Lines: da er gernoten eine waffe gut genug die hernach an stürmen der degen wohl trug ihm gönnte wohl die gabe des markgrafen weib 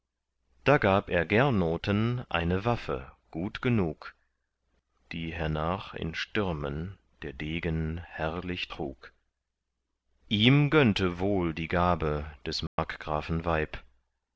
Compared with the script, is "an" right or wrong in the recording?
wrong